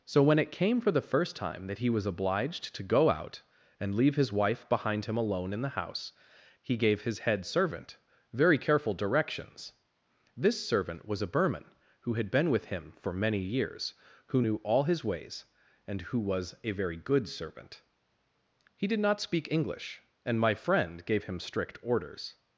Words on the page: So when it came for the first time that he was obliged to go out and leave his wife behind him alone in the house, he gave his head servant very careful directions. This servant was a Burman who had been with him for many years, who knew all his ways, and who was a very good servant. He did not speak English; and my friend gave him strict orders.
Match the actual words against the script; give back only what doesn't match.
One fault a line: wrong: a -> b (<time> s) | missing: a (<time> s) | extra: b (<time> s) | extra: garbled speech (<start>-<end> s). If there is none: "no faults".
no faults